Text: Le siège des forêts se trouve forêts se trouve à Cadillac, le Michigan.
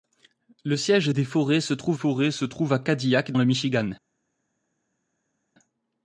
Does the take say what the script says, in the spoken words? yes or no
yes